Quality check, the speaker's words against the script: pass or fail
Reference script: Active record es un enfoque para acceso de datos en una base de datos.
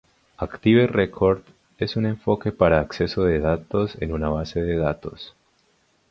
pass